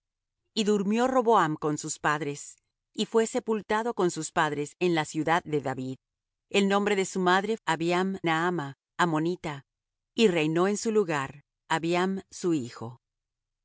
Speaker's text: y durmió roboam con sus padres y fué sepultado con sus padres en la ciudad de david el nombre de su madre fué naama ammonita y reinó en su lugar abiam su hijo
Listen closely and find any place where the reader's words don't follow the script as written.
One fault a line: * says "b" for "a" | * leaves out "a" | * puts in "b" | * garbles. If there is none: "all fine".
* says "abiam" for "fué"